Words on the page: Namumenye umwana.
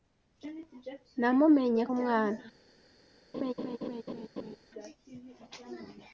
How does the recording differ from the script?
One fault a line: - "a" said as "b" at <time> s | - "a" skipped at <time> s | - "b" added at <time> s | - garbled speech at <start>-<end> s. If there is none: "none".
none